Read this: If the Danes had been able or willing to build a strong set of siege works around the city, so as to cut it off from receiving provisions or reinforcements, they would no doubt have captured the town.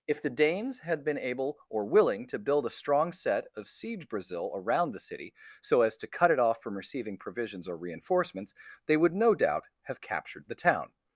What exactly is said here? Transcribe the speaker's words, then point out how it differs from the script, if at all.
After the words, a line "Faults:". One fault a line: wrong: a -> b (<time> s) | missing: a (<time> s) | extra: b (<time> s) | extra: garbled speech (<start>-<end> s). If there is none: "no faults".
If the Danes had been able or willing to build a strong set of siege brazil around the city, so as to cut it off from receiving provisions or reinforcements, they would no doubt have captured the town.
Faults:
wrong: works -> brazil (4.1 s)